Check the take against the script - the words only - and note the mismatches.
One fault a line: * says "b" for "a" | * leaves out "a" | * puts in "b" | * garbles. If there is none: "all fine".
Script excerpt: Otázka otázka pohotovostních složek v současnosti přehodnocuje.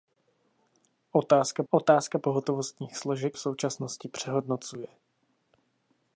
all fine